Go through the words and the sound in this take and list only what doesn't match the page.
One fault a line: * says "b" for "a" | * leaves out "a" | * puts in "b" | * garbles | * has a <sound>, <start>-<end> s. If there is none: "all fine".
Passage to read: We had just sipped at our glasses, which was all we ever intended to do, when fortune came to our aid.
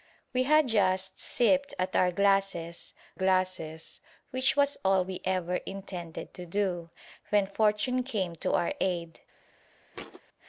* puts in "glasses"
* has a thud, 9.9-10.2 s